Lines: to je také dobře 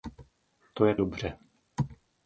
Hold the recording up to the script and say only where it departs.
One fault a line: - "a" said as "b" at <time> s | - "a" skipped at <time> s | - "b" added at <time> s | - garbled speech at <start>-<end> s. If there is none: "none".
- "také" skipped at 0.9 s